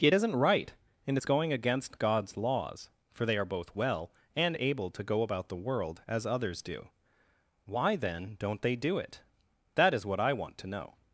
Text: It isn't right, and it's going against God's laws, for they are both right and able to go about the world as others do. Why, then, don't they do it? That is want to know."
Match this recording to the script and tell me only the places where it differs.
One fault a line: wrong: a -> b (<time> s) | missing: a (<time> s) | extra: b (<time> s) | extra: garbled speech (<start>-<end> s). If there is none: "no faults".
wrong: right -> well (3.8 s)
extra: what I (10.0 s)